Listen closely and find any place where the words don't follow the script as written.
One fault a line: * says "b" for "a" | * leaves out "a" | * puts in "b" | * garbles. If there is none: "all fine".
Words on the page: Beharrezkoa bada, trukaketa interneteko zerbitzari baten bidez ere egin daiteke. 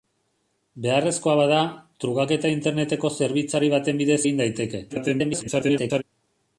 * leaves out "ere"
* garbles